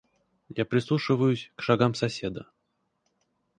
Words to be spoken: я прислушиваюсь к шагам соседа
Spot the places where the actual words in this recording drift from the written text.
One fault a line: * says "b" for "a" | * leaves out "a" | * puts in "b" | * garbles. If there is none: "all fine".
all fine